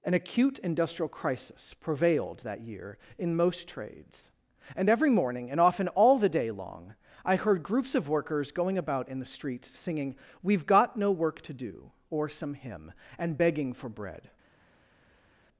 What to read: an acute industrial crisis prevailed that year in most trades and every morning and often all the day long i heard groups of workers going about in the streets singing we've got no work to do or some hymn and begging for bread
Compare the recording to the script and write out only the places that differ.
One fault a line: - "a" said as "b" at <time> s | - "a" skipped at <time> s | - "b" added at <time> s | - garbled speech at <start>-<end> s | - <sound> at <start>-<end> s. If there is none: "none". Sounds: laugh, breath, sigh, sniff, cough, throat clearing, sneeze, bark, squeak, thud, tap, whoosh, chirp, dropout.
none